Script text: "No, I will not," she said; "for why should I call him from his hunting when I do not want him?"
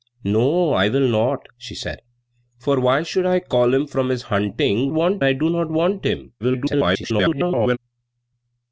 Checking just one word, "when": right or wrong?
wrong